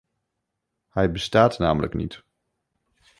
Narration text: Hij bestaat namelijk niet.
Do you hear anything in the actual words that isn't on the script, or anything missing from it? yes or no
no